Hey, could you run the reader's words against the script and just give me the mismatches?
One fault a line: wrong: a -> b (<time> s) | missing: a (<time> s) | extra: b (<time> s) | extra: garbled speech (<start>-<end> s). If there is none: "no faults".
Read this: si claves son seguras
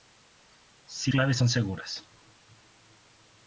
no faults